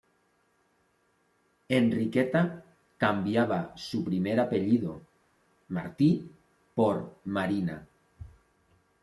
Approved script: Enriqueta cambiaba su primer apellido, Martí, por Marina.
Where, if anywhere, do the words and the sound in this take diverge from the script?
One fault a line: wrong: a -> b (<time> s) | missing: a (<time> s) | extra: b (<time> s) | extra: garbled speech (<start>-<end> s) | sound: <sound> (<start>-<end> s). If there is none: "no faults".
no faults